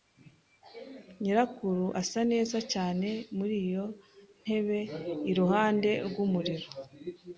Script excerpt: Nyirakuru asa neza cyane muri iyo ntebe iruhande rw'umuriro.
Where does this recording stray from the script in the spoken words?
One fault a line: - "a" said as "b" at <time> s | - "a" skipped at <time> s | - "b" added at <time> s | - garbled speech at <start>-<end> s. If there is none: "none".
none